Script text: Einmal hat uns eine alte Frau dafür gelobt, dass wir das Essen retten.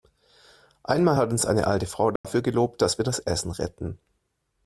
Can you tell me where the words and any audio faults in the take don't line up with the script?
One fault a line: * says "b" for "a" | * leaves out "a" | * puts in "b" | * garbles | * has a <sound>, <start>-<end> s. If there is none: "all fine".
* has a dropout, 2.2-2.2 s